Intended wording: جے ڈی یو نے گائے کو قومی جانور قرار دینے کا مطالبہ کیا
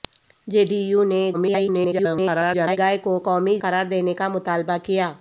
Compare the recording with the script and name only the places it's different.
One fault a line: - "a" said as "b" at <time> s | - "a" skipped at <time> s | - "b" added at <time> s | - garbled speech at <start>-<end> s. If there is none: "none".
- garbled speech at 1.3-2.8 s
- "جانور" skipped at 3.6 s